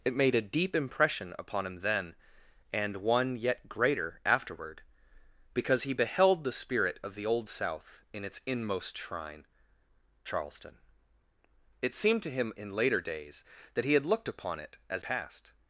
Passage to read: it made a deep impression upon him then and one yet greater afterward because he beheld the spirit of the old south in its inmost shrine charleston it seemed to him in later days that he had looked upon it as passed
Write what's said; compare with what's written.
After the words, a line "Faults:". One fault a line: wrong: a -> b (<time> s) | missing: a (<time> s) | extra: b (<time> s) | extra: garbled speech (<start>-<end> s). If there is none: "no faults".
it made a deep impression upon him then and one yet greater afterward because he beheld the spirit of the old south in its inmost shrine charleston it seemed to him in later days that he had looked upon it as passed
Faults:
no faults